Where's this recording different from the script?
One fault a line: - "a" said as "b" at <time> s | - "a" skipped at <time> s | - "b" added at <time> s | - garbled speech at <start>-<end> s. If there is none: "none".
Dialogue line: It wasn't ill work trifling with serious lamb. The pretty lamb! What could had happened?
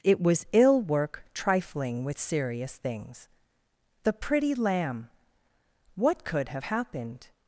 - "wasn't" said as "was" at 0.2 s
- "lamb" said as "things" at 2.8 s
- "had" said as "have" at 6.5 s